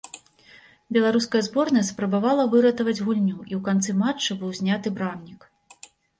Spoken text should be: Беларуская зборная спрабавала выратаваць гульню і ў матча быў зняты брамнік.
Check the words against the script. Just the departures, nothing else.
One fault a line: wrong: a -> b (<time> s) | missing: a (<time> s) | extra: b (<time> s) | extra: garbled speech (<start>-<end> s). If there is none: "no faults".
extra: канцы (3.7 s)